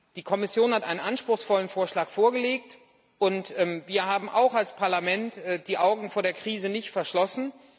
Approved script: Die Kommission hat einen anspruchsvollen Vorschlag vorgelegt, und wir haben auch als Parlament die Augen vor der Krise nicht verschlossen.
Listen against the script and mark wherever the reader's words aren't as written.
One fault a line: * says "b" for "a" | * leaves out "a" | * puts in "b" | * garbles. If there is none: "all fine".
all fine